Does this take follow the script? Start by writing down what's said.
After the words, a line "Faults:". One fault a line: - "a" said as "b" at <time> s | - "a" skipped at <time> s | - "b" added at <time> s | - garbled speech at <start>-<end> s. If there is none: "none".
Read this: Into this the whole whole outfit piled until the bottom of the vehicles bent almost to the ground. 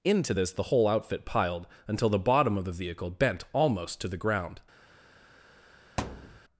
Into this the whole outfit piled until the bottom of the vehicle bent almost to the ground.
Faults:
- "whole" skipped at 0.9 s
- "vehicles" said as "vehicle" at 2.7 s